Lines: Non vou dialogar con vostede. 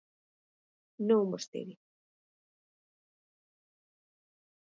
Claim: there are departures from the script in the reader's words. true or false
true